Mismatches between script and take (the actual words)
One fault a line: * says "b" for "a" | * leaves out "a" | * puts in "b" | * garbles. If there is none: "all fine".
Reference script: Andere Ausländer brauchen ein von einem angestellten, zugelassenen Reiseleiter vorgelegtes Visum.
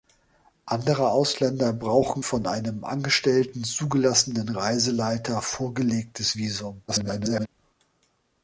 * leaves out "ein"
* garbles